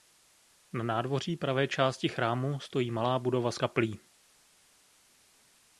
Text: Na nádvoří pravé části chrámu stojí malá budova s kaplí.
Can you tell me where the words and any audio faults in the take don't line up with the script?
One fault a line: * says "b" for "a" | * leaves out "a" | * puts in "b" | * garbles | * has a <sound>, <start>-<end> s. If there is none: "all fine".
all fine